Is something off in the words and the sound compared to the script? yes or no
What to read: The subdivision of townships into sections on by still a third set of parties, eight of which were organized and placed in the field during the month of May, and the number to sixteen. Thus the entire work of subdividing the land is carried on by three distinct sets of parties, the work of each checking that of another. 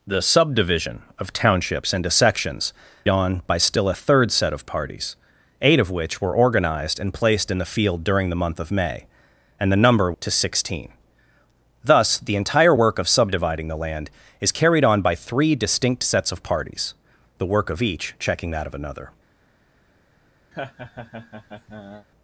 yes